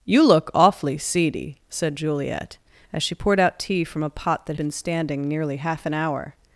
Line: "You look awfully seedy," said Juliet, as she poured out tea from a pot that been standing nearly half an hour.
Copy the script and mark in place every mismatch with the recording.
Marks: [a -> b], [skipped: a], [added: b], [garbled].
"You look awfully seedy," said Juliet, as she poured out tea from a pot that been standing nearly half an hour.